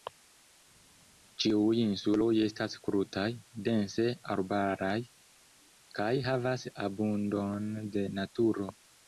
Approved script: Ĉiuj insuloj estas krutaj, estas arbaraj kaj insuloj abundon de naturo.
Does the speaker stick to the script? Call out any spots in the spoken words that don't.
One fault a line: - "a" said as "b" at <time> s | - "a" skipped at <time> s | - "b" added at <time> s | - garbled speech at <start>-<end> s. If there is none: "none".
- "estas" said as "dense" at 3.7 s
- "insuloj" said as "havas" at 6.3 s